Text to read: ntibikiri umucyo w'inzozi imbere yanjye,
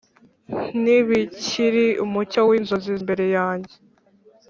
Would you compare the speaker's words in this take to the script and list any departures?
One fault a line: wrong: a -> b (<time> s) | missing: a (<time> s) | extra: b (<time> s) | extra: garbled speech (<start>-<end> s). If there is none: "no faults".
no faults